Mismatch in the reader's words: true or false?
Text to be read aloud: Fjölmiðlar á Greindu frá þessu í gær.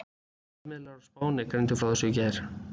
true